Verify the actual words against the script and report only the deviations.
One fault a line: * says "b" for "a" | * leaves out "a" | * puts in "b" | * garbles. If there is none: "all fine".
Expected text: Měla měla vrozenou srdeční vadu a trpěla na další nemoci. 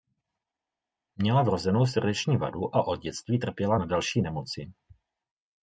* leaves out "měla"
* puts in "od dětství"